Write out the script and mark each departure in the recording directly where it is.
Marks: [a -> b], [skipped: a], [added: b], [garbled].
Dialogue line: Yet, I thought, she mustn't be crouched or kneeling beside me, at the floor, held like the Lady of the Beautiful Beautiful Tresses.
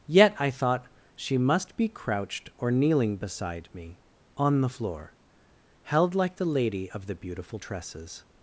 Yet, I thought, she [mustn't -> must] be crouched or kneeling beside me, [at -> on] the floor, held like the Lady of the Beautiful [skipped: Beautiful] Tresses.